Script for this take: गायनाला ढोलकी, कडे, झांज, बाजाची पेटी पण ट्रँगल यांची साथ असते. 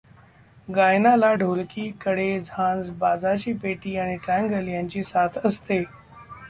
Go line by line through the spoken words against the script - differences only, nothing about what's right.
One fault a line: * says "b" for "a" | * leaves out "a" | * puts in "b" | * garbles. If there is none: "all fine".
* says "आणि" for "पण"